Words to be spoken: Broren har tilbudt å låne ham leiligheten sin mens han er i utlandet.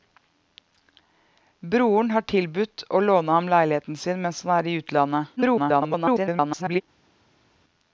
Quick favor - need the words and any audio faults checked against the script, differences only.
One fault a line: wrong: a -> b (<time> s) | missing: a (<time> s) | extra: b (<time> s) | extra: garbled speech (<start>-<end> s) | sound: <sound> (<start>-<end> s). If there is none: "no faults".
extra: garbled speech (5.4-6.8 s)